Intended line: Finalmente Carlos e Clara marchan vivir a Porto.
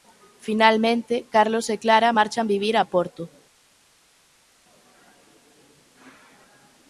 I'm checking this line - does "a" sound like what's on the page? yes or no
yes